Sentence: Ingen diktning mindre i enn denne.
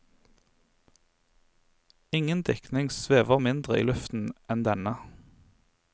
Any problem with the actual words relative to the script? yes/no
yes